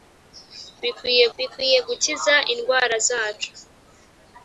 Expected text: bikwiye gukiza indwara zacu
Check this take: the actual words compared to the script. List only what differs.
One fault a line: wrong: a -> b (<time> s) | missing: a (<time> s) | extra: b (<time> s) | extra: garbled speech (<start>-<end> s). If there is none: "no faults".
extra: bikwiye (1.4 s)